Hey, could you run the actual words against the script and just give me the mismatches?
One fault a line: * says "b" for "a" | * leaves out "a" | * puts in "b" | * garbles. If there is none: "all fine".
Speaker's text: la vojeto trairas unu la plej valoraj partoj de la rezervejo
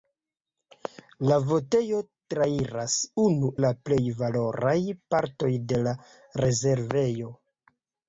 all fine